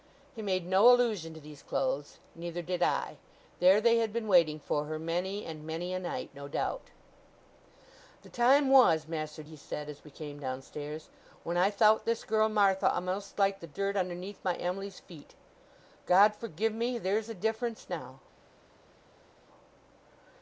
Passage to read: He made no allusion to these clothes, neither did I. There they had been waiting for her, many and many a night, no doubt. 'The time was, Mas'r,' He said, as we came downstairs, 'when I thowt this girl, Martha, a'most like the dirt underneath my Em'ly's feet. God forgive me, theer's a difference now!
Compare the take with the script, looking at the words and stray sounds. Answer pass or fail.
pass